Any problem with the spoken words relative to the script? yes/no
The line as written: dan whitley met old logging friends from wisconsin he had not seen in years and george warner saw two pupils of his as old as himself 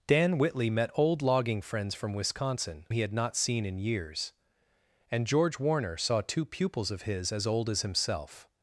no